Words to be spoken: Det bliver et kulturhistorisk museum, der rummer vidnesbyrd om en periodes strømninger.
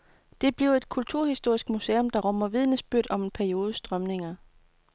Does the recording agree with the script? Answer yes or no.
yes